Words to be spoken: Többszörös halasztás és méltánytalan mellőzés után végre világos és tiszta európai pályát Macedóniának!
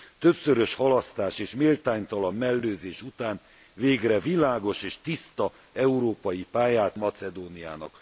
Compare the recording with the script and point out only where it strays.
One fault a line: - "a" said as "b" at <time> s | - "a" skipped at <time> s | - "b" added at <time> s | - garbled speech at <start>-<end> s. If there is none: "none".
none